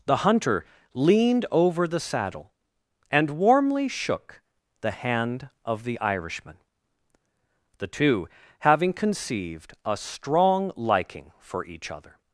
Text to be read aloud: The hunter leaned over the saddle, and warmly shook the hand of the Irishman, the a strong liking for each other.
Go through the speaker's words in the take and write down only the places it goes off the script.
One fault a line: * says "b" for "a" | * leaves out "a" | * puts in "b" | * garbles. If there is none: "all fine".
* puts in "two having conceived"